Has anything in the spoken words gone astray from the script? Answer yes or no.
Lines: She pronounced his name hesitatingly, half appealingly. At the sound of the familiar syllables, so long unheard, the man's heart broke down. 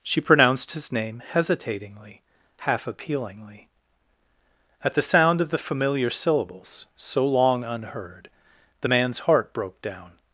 no